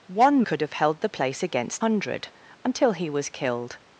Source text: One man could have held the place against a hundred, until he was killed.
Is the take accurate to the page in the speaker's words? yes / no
no